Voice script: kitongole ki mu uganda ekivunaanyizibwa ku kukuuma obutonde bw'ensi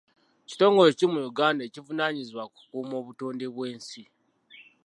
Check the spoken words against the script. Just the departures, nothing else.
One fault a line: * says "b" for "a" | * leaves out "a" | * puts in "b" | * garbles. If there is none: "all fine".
all fine